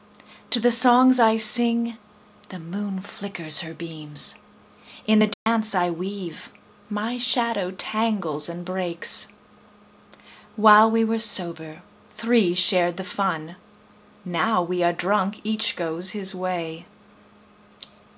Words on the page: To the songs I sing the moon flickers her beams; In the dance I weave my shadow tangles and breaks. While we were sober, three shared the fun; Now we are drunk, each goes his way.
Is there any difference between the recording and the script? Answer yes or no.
no